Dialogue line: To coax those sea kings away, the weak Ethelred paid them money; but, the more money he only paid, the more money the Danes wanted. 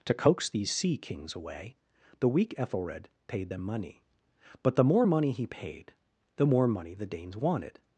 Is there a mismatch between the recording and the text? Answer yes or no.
yes